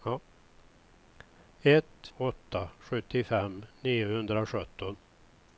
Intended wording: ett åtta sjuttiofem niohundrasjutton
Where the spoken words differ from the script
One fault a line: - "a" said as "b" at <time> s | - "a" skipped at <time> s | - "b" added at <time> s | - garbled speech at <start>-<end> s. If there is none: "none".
none